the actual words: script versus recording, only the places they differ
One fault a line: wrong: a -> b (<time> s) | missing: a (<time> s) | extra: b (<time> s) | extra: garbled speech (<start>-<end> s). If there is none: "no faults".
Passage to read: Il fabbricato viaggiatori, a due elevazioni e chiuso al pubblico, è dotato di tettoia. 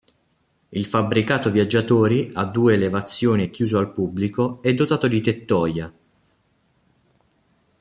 no faults